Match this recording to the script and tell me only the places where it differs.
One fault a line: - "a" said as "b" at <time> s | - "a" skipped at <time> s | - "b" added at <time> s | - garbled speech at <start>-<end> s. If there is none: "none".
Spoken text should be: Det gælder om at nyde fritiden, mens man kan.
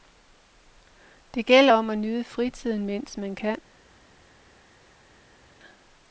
none